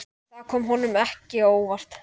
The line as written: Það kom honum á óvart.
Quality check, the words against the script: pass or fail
fail